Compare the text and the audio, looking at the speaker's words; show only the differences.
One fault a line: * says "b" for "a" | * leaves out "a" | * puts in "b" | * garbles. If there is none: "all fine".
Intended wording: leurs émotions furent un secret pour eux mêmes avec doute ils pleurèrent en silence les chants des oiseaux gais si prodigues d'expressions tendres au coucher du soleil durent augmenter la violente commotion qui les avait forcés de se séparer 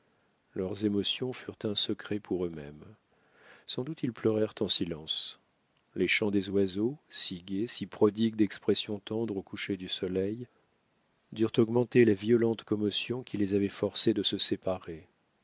* says "sans" for "avec"
* puts in "si"